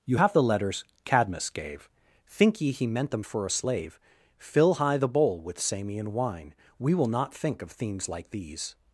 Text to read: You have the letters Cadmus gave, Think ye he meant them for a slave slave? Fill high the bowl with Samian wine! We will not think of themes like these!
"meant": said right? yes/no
yes